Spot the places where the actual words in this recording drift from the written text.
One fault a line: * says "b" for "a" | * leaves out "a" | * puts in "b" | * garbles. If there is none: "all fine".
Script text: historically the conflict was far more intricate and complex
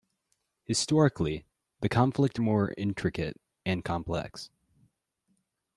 * leaves out "was far"